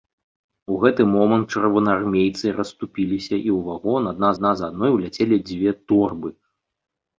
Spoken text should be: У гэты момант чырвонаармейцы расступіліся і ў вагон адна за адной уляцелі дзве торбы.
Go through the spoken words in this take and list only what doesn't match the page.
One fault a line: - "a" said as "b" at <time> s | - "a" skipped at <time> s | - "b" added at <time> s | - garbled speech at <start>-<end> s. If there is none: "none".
- "адна" added at 4.3 s